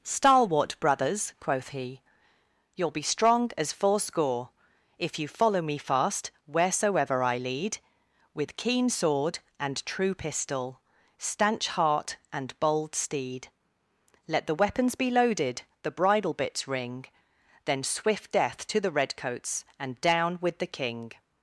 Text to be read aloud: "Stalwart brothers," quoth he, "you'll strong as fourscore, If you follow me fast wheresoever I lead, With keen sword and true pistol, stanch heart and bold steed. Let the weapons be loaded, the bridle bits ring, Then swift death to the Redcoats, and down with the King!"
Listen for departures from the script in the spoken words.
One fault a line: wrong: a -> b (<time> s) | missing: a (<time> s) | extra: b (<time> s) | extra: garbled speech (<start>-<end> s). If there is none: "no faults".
extra: be (2.9 s)